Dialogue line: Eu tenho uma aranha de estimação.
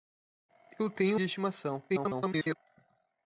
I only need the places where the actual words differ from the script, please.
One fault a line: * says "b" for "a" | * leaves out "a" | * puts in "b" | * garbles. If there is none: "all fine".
* leaves out "uma aranha"
* garbles